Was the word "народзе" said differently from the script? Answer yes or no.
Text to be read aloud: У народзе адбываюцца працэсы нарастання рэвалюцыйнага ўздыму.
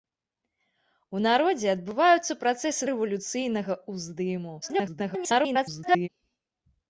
no